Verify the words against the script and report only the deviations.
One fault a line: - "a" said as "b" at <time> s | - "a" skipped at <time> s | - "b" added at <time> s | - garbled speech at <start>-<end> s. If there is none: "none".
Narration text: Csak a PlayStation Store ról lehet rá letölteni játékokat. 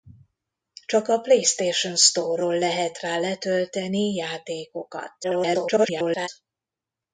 - garbled speech at 5.2-6.3 s